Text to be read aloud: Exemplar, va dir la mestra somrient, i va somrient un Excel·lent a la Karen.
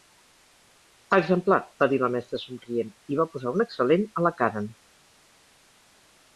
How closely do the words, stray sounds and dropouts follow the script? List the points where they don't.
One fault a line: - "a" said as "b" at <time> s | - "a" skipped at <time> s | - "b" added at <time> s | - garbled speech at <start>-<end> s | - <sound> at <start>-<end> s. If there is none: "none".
- "somrient" said as "posar" at 3.4 s